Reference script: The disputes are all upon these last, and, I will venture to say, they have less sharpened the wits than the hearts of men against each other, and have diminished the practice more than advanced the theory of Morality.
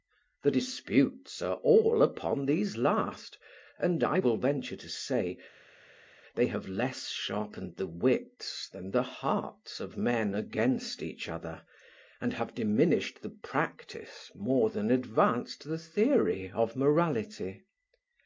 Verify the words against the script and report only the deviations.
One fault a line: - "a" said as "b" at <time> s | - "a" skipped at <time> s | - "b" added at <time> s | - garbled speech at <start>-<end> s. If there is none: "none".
none